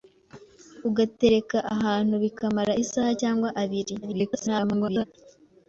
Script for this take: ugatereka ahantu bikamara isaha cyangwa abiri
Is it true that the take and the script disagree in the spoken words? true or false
true